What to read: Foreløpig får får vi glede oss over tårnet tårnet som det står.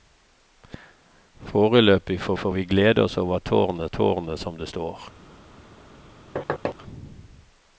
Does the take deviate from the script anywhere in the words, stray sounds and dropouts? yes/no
yes